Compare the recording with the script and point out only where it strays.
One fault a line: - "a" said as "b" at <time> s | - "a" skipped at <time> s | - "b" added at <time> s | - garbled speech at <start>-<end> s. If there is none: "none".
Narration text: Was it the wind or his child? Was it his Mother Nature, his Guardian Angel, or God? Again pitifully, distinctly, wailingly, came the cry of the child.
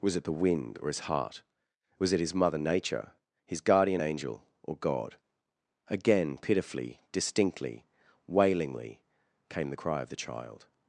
- "child" said as "heart" at 1.0 s